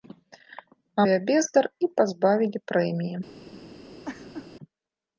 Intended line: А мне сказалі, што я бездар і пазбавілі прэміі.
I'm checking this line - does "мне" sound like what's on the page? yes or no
no